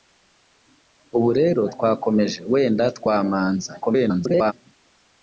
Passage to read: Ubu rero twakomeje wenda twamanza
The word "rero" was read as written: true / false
true